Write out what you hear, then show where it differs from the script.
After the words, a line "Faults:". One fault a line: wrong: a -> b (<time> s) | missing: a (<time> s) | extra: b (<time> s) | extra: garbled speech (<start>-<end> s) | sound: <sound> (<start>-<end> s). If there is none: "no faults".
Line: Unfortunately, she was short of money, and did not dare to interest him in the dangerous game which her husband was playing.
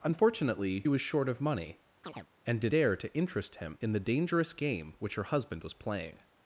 Unfortunately, was short of money, and did dare to interest him in the dangerous game which her husband was playing.
Faults:
missing: she (0.8 s)
sound: chirp (2.0-2.3 s)
missing: not (2.7 s)